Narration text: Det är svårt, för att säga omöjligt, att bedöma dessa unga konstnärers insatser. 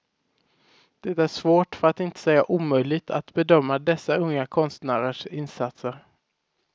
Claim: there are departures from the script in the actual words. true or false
true